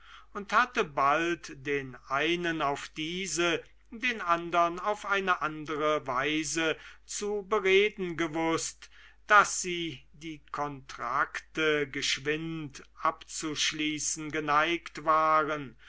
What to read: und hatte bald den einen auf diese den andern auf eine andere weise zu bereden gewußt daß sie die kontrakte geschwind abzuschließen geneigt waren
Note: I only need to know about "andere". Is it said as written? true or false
true